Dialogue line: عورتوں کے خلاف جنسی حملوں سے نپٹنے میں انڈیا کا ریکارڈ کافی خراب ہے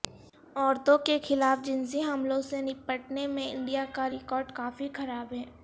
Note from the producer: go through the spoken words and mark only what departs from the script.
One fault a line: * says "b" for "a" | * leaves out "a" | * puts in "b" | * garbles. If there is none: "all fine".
all fine